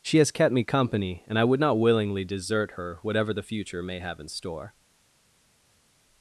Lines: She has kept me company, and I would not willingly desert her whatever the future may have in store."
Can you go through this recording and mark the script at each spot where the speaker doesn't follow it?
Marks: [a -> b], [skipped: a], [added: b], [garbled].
She has kept me company, and I would not willingly desert her whatever the future may have in store."